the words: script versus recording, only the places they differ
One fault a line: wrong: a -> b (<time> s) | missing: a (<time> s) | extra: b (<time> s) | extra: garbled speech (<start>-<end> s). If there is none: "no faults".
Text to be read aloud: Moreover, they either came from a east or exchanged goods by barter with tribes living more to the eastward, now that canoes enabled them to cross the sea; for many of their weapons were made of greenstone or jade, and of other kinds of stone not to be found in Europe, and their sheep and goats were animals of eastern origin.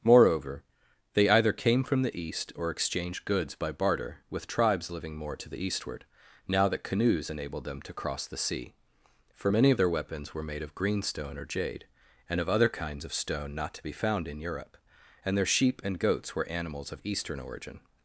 wrong: a -> the (2.0 s)